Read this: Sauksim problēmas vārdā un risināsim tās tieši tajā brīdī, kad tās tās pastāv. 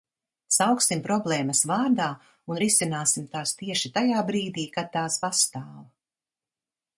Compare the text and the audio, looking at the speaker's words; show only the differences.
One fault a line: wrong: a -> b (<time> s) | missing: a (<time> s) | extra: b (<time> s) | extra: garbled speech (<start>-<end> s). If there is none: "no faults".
missing: tās (5.2 s)